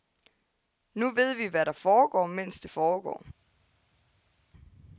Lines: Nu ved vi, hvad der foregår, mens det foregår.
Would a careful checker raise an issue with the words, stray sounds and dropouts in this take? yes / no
no